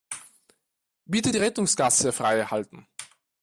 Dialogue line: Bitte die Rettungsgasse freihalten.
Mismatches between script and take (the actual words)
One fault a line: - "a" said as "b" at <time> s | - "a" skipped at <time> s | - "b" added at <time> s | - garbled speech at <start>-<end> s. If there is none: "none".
none